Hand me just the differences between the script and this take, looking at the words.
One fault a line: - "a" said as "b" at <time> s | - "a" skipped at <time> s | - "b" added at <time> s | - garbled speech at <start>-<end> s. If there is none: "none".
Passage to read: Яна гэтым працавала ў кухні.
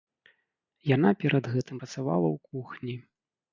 - "перад" added at 1.2 s